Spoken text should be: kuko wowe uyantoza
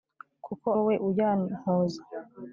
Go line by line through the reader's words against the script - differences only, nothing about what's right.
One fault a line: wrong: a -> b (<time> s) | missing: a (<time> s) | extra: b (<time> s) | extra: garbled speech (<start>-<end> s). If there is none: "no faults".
no faults